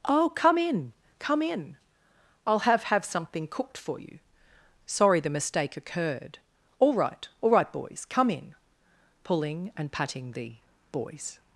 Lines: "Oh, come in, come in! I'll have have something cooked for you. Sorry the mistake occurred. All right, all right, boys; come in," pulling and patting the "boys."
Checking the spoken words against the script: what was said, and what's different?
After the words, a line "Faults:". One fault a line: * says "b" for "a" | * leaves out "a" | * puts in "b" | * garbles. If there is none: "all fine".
"Oh, come in, come in! I'll have have something cooked for you. Sorry the mistake occurred. All right, all right, boys; come in," pulling and patting the "boys."
Faults:
all fine